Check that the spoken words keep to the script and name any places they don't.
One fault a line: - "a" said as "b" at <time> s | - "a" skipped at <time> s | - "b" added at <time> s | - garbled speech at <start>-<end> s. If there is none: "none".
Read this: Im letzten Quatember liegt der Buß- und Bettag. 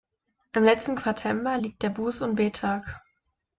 none